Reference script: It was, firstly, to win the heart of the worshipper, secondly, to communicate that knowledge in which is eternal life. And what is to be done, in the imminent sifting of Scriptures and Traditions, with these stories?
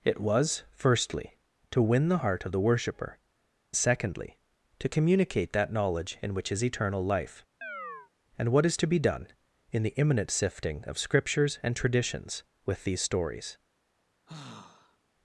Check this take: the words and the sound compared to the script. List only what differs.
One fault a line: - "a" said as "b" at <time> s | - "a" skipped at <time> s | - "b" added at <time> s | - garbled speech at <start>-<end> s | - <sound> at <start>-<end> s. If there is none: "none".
- chirp at 7.6-8.1 s
- sigh at 14.3-15.0 s